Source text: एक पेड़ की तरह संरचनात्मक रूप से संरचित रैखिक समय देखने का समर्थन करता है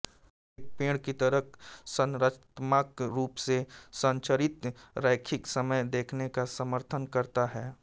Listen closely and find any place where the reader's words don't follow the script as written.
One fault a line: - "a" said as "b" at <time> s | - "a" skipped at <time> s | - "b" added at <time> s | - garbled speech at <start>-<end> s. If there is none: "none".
none